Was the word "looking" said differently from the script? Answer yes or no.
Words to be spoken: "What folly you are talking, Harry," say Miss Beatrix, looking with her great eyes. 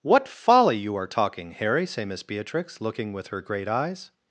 no